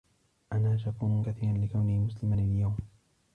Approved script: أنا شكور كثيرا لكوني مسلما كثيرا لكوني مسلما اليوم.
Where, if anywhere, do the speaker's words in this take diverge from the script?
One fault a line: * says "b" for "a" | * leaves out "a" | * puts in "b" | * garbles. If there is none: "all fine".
* leaves out "كثيرا لكوني مسلما"